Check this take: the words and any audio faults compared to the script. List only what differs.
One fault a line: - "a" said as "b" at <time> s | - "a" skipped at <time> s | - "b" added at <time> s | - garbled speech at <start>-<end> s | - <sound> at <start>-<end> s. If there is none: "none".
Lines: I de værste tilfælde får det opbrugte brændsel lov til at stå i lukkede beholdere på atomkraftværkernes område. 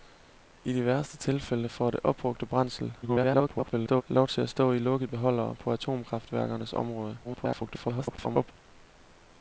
- garbled speech at 3.0-4.0 s
- garbled speech at 7.2-8.5 s